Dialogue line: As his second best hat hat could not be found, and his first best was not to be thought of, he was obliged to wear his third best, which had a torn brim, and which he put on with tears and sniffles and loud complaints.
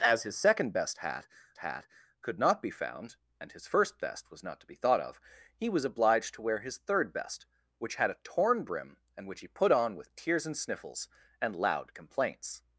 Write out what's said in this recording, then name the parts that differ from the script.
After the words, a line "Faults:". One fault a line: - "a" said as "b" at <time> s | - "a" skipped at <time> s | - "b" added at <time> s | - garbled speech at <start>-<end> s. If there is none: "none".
As his second best hat hat could not be found, and his first best was not to be thought of, he was obliged to wear his third best, which had a torn brim, and which he put on with tears and sniffles and loud complaints.
Faults:
none